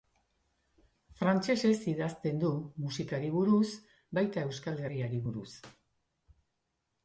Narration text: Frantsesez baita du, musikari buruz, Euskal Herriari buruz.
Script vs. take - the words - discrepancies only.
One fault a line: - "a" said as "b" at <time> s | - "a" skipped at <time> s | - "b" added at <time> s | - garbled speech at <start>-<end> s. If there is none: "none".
- "baita" said as "idazten" at 1.9 s
- "baita" added at 4.2 s